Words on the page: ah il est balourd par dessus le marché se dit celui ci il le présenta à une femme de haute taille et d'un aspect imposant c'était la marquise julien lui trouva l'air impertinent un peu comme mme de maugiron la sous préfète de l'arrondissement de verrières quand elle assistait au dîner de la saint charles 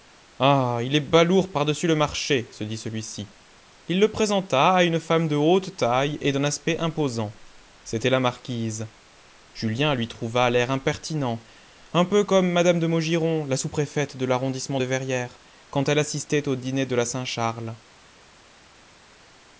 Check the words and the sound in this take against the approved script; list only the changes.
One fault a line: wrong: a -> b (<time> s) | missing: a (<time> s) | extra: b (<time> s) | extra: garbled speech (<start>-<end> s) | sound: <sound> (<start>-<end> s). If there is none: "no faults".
no faults